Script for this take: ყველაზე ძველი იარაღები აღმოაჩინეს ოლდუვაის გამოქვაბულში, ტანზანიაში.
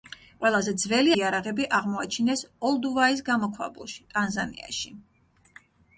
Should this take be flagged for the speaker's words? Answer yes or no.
no